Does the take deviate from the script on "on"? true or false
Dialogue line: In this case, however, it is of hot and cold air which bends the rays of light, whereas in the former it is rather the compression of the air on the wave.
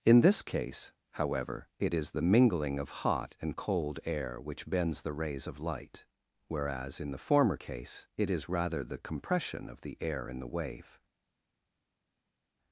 true